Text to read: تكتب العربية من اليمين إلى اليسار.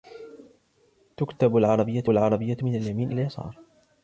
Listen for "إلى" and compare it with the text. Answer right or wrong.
wrong